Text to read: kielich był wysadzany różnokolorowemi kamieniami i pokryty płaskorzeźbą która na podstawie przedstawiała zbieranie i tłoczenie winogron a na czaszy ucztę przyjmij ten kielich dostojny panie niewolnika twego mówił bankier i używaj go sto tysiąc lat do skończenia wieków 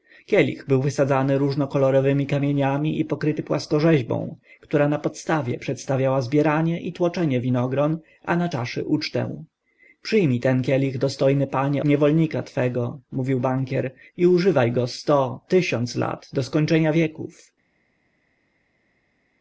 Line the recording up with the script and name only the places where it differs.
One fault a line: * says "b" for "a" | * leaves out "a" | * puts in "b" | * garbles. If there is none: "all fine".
all fine